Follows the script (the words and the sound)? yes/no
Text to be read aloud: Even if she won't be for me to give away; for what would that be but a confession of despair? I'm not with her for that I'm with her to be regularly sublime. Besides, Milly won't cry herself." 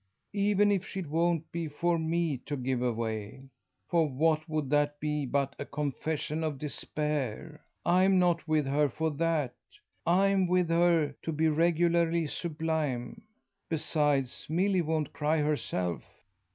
yes